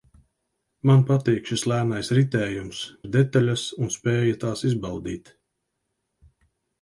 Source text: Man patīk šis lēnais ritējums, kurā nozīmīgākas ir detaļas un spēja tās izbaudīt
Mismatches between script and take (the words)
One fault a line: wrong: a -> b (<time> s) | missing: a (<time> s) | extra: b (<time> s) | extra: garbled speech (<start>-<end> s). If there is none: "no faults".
missing: kurā nozīmīgākas (2.8 s)